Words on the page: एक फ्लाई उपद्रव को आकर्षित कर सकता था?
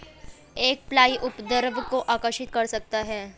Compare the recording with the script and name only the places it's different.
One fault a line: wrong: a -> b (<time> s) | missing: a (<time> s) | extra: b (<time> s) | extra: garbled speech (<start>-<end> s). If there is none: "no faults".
wrong: था -> है (3.0 s)